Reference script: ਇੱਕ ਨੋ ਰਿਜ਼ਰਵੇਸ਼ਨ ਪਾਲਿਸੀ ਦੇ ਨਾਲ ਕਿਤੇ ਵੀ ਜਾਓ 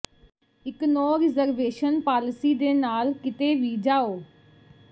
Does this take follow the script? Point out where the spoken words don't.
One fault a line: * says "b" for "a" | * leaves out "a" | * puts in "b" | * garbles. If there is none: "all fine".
all fine